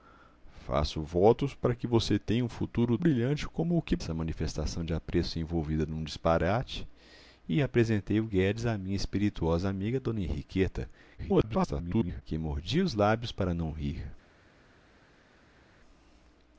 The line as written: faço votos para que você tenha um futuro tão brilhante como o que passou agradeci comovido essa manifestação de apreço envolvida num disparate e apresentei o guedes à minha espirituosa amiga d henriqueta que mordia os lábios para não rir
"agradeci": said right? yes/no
no